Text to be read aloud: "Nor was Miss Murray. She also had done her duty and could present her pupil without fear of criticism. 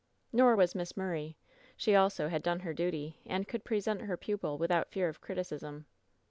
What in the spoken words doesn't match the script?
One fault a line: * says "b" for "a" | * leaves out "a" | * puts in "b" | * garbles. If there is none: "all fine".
all fine